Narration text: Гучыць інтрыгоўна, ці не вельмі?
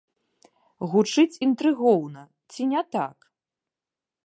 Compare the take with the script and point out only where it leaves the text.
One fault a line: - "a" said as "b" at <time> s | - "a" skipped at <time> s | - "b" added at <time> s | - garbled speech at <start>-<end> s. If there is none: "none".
- "вельмі" said as "так" at 3.0 s